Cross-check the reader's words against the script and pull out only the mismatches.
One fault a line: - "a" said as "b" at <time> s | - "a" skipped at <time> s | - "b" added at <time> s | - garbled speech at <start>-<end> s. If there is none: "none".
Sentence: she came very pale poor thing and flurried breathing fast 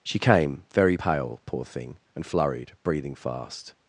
none